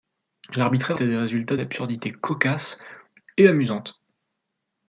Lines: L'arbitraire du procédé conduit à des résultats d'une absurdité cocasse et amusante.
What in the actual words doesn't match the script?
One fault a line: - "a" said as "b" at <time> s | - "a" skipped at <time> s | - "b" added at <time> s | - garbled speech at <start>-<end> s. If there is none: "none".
- "du procédé conduit" skipped at 1.0 s
- "d'une" skipped at 1.6 s